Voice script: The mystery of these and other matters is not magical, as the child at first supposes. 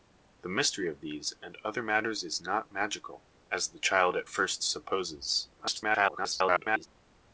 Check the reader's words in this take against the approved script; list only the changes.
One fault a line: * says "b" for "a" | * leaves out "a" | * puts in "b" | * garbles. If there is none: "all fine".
* garbles